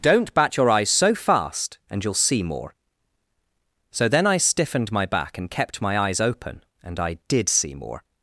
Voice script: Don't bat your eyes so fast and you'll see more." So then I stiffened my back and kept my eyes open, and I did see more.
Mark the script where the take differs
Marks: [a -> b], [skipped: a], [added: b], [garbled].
Don't bat your eyes so fast and you'll see more." So then I stiffened my back and kept my eyes open, and I did see more.